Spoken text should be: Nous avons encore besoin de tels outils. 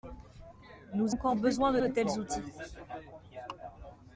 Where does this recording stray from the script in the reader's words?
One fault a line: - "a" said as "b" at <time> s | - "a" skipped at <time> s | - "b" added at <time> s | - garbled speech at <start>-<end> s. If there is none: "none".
- "avons" skipped at 1.1 s
- "de" added at 1.8 s